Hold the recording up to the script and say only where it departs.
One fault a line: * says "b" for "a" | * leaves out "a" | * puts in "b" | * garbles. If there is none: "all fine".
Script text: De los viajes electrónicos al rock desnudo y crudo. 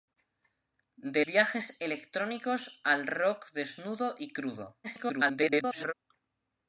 * leaves out "los"
* garbles